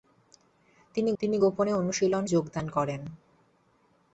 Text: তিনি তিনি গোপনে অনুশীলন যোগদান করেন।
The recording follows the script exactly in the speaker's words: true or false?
true